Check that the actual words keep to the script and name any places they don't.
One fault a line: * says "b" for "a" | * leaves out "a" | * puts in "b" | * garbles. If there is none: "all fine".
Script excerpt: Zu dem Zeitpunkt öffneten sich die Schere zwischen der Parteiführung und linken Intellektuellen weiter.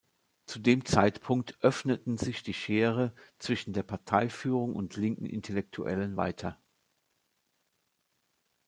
all fine